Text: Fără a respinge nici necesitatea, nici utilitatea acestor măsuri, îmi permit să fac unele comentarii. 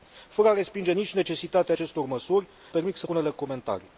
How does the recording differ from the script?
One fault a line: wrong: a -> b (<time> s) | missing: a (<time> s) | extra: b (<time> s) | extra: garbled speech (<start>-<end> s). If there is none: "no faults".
missing: nici utilitatea (1.8 s)
missing: îmi (2.5 s)
missing: fac (3.1 s)